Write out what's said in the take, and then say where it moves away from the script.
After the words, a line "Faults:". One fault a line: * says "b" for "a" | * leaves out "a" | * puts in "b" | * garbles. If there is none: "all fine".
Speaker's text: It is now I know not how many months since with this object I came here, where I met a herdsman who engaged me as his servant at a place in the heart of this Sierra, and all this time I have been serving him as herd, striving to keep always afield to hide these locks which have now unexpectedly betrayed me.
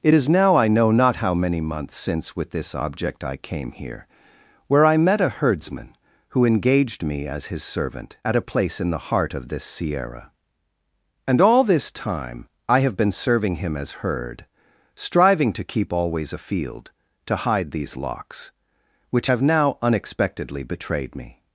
It is now I know not how many months since with this object I came here, where I met a herdsman who engaged me as his servant at a place in the heart of this Sierra, and all this time I have been serving him as herd, striving to keep always afield to hide these locks which have now unexpectedly betrayed me.
Faults:
all fine